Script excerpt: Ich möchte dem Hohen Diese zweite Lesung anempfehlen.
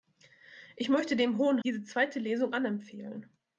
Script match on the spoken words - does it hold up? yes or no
yes